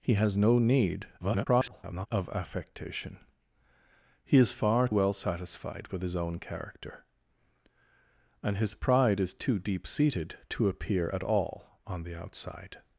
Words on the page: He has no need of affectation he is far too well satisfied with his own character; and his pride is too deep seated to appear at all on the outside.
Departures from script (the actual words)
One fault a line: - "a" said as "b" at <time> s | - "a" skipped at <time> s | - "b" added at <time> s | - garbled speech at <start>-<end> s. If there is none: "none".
- garbled speech at 1.2-2.1 s
- "too" skipped at 4.9 s